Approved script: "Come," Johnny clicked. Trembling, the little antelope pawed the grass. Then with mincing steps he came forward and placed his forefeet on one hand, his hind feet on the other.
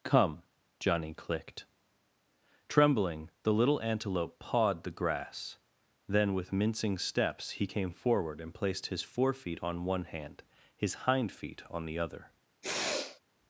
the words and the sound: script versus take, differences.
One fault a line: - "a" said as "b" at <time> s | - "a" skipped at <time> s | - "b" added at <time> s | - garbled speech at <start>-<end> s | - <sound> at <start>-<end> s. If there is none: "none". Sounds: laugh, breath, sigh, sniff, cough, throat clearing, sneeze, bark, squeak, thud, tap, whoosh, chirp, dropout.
- sniff at 12.6-13.2 s